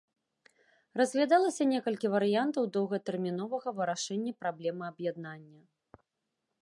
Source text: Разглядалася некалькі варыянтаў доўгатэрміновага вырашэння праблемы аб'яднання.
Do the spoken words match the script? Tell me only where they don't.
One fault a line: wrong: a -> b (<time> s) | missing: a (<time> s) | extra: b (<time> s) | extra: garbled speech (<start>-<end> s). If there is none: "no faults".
no faults